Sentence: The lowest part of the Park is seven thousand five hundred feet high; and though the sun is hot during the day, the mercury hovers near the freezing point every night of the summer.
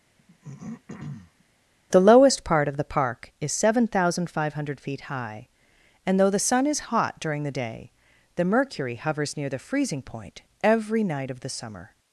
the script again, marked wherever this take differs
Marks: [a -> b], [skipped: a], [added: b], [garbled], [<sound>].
[throat clearing] The lowest part of the Park is seven thousand five hundred feet high; and though the sun is hot during the day, the mercury hovers near the freezing point every night of the summer.